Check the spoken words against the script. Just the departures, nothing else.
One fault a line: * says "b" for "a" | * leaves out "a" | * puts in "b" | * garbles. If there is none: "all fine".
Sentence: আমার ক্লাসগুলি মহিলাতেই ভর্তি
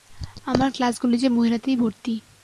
* puts in "যে"